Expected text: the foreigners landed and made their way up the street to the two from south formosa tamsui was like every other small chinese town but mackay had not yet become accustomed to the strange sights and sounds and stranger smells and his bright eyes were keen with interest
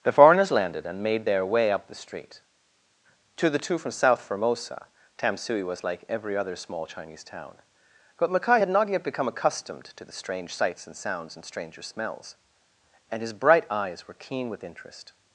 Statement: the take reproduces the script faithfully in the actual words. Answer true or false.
true